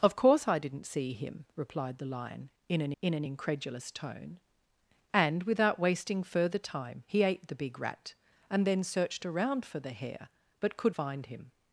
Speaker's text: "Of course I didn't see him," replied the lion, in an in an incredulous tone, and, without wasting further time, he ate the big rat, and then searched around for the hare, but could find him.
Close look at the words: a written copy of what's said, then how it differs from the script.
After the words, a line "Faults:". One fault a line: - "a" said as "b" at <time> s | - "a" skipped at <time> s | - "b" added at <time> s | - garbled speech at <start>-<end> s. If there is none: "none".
"Of course I didn't see him," replied the lion, in an in an incredulous tone, and, without wasting further time, he ate the big rat, and then searched around for the hare, but could find him.
Faults:
none